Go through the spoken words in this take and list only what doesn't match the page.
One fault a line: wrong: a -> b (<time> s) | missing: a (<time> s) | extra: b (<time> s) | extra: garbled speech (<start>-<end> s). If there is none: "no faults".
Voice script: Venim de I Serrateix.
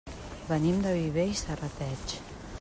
extra: Viver (0.9 s)